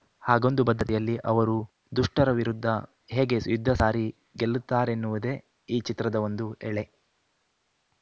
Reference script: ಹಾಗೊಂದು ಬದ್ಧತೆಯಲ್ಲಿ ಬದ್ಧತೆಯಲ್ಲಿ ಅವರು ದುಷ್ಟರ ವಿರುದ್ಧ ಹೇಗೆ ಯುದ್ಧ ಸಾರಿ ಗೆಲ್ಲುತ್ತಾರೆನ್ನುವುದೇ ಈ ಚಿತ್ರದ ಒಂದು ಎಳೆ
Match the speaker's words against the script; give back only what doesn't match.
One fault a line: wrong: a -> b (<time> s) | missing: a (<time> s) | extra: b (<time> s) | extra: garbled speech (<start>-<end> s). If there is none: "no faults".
missing: ಬದ್ಧತೆಯಲ್ಲಿ (1.2 s)